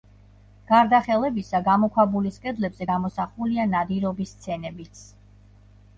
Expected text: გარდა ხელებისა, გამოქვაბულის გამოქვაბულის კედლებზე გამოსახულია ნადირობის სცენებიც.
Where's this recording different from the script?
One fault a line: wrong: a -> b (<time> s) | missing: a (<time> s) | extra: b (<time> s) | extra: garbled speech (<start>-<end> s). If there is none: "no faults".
missing: გამოქვაბულის (2.4 s)